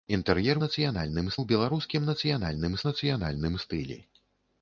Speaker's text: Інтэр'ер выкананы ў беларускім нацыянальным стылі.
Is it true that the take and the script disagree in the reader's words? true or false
true